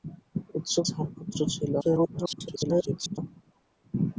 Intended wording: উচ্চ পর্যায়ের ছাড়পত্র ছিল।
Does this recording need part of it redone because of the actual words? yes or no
yes